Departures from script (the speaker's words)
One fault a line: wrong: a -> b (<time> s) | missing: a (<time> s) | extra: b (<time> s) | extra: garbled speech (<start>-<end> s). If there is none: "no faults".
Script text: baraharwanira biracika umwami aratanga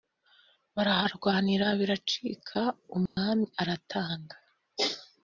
no faults